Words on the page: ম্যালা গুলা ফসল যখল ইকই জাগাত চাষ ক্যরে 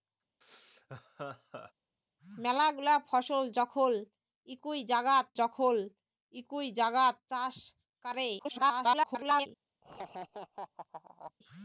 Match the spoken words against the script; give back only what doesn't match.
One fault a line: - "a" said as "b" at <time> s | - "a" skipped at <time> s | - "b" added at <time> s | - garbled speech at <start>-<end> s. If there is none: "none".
- "যখল ইকই জাগাত" added at 5.4 s
- garbled speech at 8.4-9.5 s